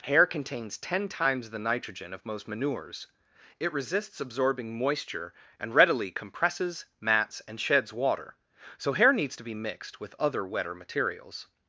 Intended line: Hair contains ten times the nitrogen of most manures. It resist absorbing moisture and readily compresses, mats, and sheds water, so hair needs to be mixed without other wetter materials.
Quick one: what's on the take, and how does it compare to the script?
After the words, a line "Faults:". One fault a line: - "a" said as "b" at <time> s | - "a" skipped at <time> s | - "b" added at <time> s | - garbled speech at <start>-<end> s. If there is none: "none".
Hair contains ten times the nitrogen of most manures. It resists absorbing moisture and readily compresses, mats, and sheds water, so hair needs to be mixed with other wetter materials.
Faults:
- "resist" said as "resists" at 3.7 s
- "without" said as "with" at 10.0 s